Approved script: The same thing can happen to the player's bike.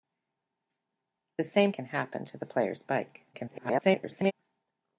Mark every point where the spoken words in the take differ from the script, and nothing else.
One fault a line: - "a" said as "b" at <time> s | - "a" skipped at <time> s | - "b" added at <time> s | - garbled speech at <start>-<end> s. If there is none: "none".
- "thing" skipped at 1.7 s
- garbled speech at 3.3-4.3 s